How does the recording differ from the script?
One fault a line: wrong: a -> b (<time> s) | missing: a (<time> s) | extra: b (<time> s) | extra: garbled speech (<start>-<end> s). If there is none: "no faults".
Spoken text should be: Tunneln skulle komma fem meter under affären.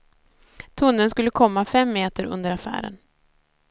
no faults